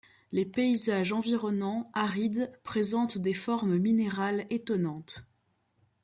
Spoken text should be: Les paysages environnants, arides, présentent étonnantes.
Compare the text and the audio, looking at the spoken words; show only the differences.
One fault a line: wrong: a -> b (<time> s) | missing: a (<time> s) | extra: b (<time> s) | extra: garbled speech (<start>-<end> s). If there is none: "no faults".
extra: des formes minérales (3.2 s)